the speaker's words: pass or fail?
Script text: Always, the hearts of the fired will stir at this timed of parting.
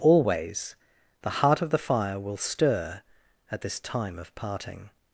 fail